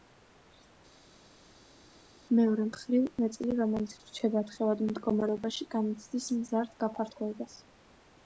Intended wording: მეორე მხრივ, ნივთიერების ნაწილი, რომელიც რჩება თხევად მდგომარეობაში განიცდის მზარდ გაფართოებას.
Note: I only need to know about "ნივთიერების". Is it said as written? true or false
false